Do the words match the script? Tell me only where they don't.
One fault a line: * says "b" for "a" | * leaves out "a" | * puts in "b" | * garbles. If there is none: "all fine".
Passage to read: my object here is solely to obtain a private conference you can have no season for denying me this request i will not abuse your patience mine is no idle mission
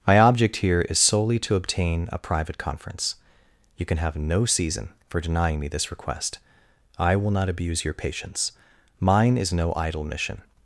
all fine